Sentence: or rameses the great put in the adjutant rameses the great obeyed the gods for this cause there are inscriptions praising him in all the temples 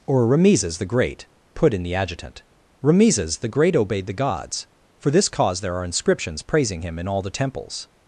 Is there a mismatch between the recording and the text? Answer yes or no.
no